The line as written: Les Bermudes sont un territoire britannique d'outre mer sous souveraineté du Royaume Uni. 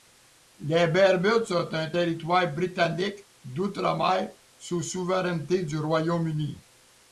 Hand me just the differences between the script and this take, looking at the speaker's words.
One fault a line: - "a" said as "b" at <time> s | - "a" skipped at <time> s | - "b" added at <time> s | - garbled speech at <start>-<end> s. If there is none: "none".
none